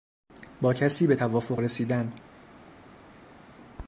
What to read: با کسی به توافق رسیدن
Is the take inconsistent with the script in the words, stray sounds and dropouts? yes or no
no